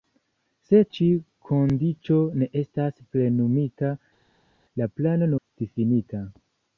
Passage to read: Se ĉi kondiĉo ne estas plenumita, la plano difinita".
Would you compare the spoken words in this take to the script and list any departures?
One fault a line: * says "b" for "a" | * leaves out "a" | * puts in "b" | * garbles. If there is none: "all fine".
all fine